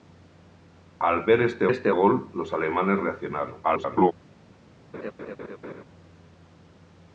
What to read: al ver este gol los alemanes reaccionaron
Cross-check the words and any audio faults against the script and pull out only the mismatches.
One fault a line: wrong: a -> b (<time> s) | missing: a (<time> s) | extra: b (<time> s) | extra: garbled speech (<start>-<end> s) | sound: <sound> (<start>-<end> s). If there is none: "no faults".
extra: este (1.7 s)
extra: garbled speech (3.6-4.1 s)
sound: laugh (4.9-5.8 s)